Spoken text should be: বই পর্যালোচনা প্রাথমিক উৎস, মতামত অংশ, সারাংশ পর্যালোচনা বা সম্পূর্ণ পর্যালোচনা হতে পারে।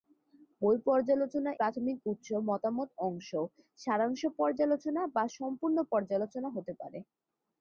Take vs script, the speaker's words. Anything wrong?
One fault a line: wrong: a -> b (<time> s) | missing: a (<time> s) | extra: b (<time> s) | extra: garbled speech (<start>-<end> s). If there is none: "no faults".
no faults